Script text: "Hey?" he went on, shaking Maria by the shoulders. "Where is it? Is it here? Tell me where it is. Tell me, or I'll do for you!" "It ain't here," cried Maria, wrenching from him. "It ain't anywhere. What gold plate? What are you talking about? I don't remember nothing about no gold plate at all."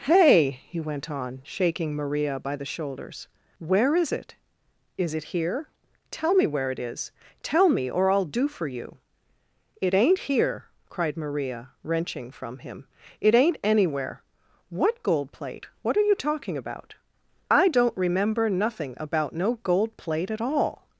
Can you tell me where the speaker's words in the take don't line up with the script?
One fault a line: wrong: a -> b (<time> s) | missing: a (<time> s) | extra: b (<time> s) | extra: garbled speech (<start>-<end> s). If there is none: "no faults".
no faults